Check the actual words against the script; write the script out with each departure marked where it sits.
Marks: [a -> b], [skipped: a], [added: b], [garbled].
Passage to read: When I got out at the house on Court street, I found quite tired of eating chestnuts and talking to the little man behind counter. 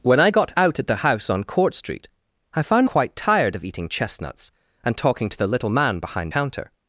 When I got out at the house on Court street, I found quite tired of eating chestnuts and talking to the little man behind counter.